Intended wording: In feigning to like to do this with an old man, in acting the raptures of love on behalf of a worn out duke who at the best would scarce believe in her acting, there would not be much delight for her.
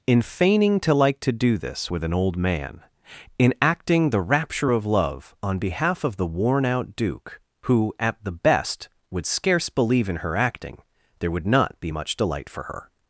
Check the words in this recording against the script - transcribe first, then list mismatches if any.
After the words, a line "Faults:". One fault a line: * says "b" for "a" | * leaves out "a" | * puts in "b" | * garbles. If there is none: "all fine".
In feigning to like to do this with an old man, in acting the rapture of love on behalf of the worn out duke who at the best would scarce believe in her acting, there would not be much delight for her.
Faults:
* says "rapture" for "raptures"
* says "the" for "a"